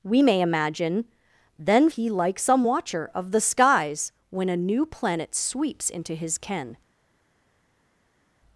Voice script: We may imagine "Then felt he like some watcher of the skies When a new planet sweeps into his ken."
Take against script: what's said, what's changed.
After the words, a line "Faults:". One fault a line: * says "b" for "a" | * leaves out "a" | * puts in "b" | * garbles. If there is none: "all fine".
We may imagine "Then he like some watcher of the skies When a new planet sweeps into his ken."
Faults:
* leaves out "felt"